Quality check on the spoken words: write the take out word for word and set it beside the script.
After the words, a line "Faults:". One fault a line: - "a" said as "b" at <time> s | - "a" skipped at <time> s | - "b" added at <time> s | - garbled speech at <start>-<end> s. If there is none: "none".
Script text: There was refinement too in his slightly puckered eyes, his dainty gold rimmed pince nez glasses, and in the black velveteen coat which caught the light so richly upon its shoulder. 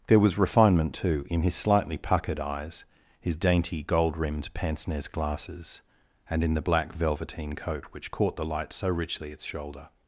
There was refinement too in his slightly puckered eyes, his dainty gold rimmed pince nez glasses, and in the black velveteen coat which caught the light so richly its shoulder.
Faults:
- "upon" skipped at 9.3 s